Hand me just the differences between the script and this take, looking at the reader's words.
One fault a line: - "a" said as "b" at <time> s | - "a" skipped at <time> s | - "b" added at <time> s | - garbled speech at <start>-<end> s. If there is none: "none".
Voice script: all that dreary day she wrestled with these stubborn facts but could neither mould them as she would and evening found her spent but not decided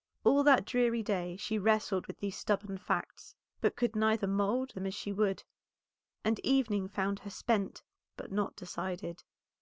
none